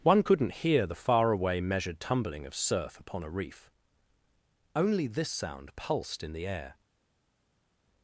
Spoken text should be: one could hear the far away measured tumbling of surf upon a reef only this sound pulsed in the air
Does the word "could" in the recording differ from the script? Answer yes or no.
yes